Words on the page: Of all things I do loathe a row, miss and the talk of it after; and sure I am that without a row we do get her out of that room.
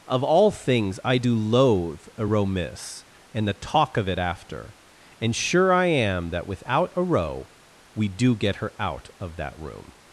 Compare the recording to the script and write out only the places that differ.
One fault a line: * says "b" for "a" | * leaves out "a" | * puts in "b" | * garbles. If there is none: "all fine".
all fine